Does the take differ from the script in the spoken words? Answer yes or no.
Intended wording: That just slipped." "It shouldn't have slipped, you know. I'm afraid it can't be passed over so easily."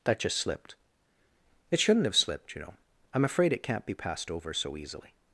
no